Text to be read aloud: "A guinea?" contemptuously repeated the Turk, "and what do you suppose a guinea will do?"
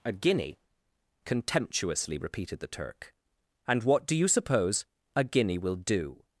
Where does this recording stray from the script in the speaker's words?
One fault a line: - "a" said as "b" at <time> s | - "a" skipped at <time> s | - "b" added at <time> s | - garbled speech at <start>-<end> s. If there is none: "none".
none